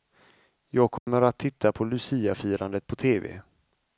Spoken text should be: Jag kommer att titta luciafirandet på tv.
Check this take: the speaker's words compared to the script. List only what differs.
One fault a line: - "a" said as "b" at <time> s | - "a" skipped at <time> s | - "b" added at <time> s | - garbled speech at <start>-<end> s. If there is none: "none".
- "på" added at 1.7 s